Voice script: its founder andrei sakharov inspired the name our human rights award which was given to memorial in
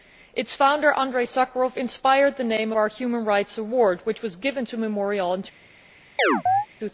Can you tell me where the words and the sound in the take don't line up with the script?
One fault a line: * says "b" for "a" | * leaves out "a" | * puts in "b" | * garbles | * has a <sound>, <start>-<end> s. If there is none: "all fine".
* has a chirp, 6.2-6.7 s